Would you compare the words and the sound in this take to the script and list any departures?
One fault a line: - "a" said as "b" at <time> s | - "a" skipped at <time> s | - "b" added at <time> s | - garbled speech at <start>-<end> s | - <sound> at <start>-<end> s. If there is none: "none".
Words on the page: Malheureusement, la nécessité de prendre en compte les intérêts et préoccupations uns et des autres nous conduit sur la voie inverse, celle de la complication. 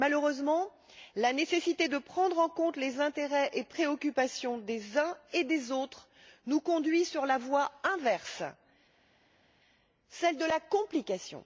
- "des" added at 4.6 s